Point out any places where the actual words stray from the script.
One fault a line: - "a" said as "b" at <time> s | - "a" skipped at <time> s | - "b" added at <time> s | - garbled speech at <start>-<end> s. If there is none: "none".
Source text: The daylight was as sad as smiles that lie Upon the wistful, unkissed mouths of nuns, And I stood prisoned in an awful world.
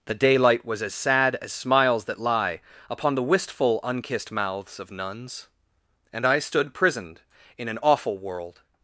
none